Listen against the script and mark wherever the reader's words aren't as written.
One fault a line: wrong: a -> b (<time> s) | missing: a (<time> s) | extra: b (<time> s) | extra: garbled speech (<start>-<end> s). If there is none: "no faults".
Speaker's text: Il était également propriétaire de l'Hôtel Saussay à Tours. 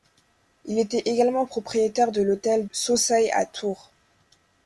no faults